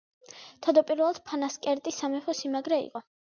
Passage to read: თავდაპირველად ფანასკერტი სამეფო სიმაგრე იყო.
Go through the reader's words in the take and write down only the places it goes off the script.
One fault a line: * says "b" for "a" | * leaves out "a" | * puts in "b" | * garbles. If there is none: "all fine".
all fine